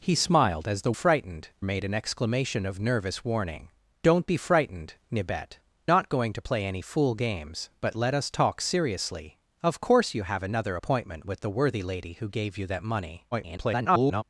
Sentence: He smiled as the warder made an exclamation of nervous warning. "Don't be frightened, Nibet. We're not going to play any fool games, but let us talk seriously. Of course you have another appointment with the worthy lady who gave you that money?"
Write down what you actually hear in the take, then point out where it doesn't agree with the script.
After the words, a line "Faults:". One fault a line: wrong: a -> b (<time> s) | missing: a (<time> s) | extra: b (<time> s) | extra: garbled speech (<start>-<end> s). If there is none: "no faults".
He smiled as the frightened made an exclamation of nervous warning. "Don't be frightened, Nibet. Not going to play any fool games, but let us talk seriously. Of course you have another appointment with the worthy lady who gave you that money?" [garbled]
Faults:
wrong: warder -> frightened (0.9 s)
missing: We're (5.6 s)
extra: garbled speech (13.3-14.2 s)